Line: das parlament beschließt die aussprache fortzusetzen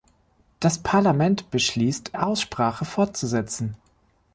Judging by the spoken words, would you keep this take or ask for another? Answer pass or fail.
fail